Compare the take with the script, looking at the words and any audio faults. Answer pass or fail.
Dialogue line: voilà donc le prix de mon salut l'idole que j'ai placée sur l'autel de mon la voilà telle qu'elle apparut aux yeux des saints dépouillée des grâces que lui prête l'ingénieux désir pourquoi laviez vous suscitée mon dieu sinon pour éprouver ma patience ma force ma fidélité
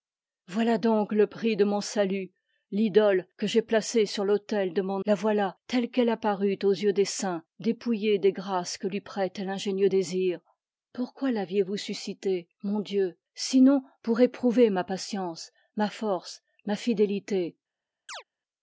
fail